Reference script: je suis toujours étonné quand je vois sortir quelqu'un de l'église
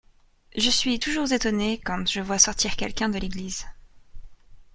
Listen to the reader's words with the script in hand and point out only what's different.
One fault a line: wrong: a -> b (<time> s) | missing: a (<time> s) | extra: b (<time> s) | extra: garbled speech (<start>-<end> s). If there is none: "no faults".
no faults